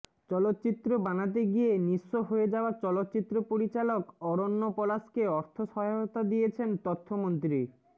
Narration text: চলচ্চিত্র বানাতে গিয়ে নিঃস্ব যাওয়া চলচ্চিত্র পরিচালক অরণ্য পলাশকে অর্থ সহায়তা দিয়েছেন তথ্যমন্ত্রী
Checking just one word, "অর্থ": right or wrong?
right